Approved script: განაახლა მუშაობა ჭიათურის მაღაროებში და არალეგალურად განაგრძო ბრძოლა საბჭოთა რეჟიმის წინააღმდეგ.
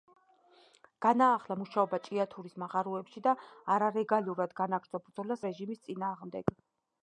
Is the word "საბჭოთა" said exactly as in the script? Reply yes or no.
no